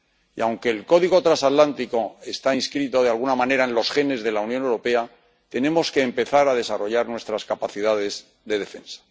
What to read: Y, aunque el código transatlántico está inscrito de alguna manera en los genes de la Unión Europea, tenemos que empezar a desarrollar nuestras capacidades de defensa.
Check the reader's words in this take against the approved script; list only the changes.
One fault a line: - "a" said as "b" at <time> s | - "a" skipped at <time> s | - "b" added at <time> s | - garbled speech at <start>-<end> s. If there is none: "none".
none